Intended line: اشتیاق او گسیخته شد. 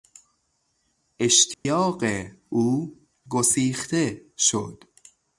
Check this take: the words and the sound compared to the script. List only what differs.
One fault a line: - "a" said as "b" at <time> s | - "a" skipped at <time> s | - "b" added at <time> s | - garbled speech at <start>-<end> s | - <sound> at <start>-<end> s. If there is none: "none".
- dropout at 1.5-1.7 s